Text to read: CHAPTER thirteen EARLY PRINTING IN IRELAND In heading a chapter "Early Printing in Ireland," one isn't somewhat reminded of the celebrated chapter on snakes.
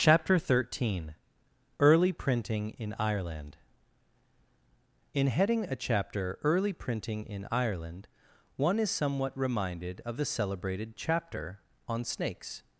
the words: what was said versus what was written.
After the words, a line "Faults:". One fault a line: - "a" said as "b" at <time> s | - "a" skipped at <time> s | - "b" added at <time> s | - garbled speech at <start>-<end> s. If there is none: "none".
CHAPTER thirteen EARLY PRINTING IN IRELAND In heading a chapter "Early Printing in Ireland," one is somewhat reminded of the celebrated chapter on snakes.
Faults:
- "isn't" said as "is" at 8.8 s